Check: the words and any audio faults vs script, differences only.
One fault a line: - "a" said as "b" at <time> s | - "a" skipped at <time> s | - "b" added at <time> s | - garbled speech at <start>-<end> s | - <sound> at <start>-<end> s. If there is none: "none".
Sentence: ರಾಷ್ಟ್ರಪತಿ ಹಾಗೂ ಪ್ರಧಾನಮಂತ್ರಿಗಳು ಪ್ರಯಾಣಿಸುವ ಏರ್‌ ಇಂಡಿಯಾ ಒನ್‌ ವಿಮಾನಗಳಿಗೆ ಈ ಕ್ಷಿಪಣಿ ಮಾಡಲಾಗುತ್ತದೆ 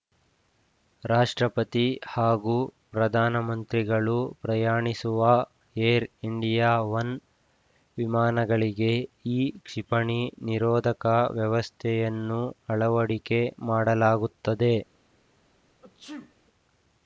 - "ನಿರೋಧಕ ವ್ಯವಸ್ಥೆಯನ್ನು ಅಳವಡಿಕೆ" added at 10.5 s
- sneeze at 15.8-16.4 s